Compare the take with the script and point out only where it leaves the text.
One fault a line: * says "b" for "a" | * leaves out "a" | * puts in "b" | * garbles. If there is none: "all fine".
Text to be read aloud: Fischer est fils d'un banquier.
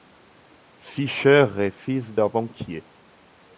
all fine